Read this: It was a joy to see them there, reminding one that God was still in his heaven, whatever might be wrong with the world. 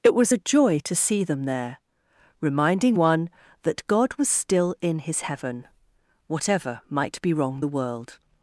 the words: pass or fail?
fail